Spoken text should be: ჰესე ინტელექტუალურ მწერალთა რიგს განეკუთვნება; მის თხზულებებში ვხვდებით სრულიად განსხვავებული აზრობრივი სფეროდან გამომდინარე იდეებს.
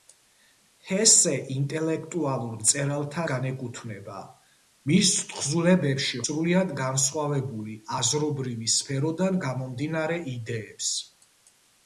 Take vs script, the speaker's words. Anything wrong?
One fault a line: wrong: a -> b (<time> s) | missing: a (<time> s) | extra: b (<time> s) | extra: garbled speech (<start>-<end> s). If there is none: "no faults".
missing: რიგს (3.2 s)
missing: ვხვდებით (6.2 s)